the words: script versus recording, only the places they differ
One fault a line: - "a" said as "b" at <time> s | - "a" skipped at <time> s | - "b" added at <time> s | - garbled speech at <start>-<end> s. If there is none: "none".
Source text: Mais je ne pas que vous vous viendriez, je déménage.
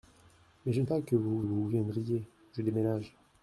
none